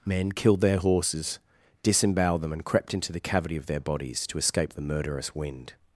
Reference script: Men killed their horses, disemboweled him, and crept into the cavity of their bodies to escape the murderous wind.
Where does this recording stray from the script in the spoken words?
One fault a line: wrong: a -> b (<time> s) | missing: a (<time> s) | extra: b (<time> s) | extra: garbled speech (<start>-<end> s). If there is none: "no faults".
wrong: him -> them (2.4 s)